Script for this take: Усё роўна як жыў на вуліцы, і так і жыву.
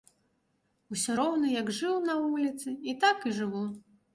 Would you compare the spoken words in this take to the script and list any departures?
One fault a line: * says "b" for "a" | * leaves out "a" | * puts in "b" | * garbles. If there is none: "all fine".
all fine